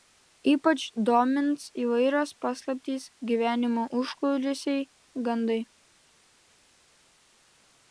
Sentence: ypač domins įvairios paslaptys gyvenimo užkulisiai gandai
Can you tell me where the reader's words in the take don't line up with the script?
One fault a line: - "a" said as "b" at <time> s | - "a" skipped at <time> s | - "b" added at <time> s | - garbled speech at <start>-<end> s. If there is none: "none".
none